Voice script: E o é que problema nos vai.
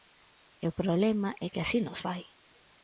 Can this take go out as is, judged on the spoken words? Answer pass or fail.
fail